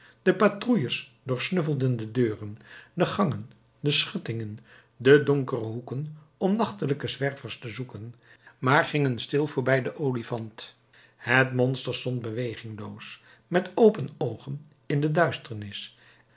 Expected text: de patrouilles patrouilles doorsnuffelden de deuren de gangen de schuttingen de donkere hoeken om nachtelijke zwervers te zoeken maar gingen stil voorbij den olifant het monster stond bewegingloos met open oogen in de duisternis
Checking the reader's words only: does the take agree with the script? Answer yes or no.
no